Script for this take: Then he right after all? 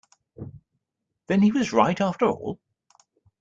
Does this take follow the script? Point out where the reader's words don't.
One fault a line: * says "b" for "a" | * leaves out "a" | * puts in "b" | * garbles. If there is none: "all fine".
* puts in "was"